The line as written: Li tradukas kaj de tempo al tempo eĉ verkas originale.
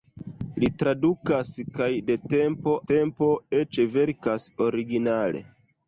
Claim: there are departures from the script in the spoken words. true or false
true